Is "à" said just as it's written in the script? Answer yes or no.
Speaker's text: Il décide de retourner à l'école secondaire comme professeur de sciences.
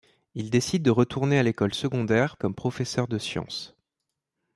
yes